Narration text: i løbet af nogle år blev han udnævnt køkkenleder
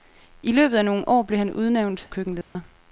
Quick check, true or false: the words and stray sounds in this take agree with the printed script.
false